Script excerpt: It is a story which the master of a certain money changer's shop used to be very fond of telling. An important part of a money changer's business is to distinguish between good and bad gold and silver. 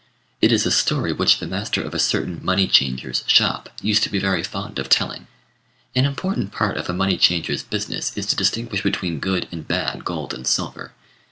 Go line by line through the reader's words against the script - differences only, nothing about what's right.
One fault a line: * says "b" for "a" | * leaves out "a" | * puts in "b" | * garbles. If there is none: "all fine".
all fine